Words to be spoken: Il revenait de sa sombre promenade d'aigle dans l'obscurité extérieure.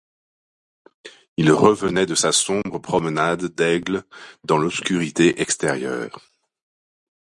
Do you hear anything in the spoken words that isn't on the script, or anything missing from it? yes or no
no